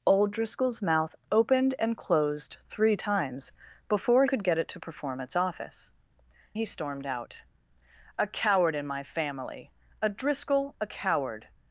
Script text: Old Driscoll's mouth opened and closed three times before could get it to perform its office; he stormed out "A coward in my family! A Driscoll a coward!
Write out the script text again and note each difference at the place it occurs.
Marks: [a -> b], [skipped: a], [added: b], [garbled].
Old Driscoll's mouth opened and closed three times before could get it to perform its office; he stormed out "A coward in my family! A Driscoll a coward!